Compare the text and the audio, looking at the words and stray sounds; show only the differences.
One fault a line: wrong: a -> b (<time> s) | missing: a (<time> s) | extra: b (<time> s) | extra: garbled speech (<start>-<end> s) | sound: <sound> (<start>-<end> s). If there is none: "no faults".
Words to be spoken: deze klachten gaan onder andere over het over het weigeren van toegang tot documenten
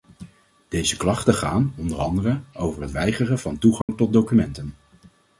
missing: over het (2.9 s)
sound: dropout (3.8-3.9 s)